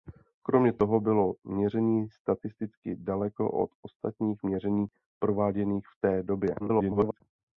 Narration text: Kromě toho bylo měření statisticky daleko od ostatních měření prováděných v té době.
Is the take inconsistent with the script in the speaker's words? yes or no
yes